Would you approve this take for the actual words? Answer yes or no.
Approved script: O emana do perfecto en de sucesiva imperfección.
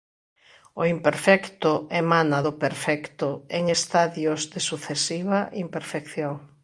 no